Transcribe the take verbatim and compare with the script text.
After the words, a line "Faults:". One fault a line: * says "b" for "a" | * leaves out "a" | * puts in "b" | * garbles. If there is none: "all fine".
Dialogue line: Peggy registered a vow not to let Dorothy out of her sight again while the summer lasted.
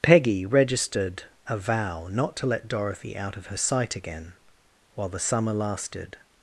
Peggy registered a vow not to let Dorothy out of her sight again while the summer lasted.
Faults:
all fine